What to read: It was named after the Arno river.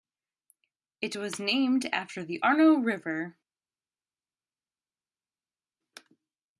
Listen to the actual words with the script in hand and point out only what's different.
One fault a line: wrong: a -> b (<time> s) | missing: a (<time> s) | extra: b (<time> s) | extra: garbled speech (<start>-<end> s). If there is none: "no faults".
no faults